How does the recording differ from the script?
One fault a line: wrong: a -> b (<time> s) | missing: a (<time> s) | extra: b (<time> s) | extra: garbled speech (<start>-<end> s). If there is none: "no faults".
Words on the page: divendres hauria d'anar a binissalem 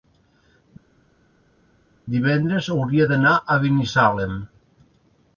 no faults